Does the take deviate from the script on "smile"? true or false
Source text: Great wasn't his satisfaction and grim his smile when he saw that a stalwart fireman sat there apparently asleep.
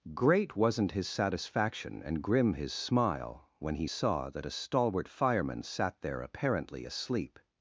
false